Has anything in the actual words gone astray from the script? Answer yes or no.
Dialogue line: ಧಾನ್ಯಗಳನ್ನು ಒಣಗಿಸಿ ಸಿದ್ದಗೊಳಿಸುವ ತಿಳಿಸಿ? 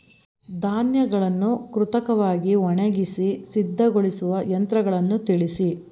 yes